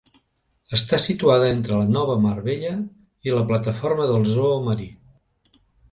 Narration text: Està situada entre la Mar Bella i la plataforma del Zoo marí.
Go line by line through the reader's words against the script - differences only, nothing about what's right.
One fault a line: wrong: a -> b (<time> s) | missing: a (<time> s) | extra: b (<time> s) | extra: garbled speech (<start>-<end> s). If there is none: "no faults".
extra: Nova (2.0 s)